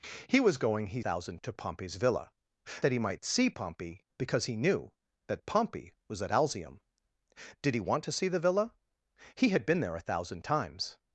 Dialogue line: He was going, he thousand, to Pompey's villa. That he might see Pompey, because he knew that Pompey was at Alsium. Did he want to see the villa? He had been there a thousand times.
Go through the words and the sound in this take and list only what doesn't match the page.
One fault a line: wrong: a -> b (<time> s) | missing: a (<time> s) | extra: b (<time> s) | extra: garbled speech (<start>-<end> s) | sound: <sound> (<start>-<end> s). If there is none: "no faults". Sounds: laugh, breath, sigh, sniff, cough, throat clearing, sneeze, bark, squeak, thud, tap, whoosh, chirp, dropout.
no faults